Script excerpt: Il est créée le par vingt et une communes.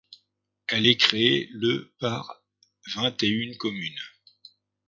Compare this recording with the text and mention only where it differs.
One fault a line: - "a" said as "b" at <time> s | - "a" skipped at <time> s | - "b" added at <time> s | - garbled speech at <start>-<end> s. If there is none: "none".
- "Il" said as "Elle" at 0.7 s